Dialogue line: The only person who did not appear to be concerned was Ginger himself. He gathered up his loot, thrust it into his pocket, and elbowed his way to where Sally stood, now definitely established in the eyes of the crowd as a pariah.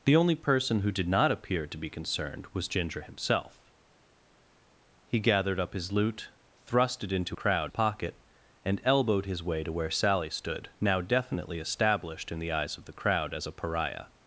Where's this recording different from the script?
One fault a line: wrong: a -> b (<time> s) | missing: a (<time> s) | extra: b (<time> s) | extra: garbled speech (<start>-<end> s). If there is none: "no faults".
wrong: his -> crowd (7.3 s)